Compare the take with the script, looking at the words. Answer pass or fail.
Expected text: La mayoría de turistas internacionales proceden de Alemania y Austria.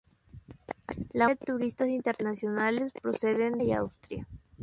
fail